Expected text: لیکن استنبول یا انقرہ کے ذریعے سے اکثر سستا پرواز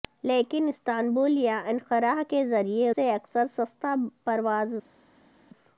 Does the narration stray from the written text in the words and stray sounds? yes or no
no